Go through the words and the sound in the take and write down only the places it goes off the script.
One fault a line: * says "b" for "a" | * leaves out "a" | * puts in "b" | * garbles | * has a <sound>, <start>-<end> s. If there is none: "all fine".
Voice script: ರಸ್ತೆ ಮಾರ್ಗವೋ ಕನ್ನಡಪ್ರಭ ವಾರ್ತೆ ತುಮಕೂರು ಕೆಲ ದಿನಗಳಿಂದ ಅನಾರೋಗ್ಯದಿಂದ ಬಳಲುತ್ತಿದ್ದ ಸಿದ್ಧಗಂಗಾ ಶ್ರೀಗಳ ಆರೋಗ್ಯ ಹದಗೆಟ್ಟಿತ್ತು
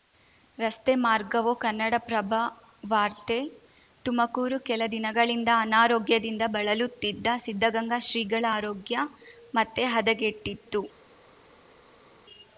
* puts in "ಮತ್ತೆ"